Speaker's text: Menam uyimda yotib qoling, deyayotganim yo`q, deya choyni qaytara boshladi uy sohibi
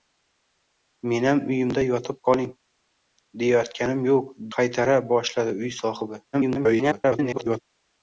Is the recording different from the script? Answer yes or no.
yes